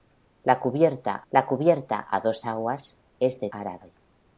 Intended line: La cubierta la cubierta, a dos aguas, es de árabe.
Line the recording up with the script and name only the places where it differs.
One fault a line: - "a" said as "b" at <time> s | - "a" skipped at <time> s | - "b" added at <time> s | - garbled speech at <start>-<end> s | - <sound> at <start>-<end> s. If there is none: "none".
none